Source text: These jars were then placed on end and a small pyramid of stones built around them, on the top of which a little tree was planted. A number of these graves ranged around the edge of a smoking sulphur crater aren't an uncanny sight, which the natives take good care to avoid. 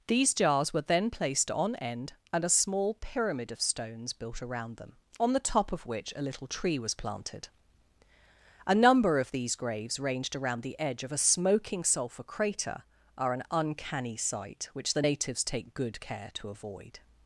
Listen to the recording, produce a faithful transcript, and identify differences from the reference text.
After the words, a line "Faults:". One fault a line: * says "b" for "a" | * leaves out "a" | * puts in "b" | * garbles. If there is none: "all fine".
These jars were then placed on end and a small pyramid of stones built around them, on the top of which a little tree was planted. A number of these graves ranged around the edge of a smoking sulphur crater are an uncanny sight, which the natives take good care to avoid.
Faults:
* says "are" for "aren't"